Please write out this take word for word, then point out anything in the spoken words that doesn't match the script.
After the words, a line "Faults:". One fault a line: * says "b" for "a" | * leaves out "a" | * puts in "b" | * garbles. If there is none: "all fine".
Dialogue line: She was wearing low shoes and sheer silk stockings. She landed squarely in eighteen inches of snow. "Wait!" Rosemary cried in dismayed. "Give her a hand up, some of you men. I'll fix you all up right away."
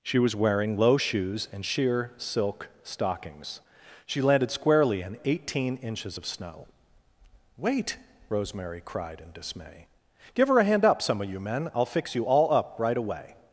She was wearing low shoes and sheer silk stockings. She landed squarely in eighteen inches of snow. "Wait!" Rosemary cried in dismay. "Give her a hand up, some of you men. I'll fix you all up right away."
Faults:
* says "dismay" for "dismayed"